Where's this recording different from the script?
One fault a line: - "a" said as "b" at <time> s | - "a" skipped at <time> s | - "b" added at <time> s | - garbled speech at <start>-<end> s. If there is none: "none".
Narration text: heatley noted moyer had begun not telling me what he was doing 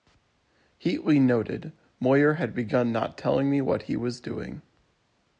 none